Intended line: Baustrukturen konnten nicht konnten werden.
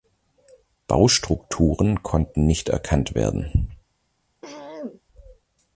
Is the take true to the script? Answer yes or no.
no